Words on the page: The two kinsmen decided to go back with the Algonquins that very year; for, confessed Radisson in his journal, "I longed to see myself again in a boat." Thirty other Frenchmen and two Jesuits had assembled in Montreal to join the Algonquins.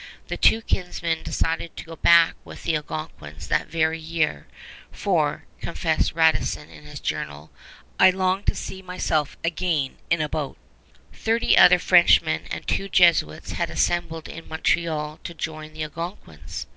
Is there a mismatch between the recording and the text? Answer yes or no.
no